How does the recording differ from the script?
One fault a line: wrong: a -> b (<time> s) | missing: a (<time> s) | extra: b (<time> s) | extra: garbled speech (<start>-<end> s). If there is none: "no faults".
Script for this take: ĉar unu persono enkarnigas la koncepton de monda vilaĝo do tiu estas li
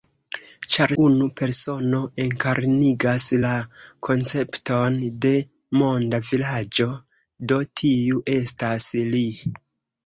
no faults